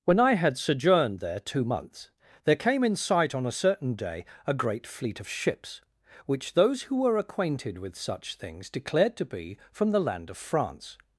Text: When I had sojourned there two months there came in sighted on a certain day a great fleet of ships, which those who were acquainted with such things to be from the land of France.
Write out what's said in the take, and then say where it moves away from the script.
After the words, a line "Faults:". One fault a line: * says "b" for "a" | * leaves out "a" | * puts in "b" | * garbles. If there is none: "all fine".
When I had sojourned there two months there came in sight on a certain day a great fleet of ships, which those who were acquainted with such things declared to be from the land of France.
Faults:
* says "sight" for "sighted"
* puts in "declared"